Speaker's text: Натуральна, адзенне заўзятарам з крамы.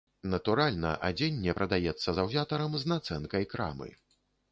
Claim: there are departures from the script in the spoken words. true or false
true